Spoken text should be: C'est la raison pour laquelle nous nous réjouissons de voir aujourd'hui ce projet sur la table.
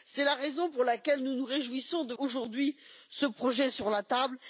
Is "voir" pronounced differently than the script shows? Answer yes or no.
yes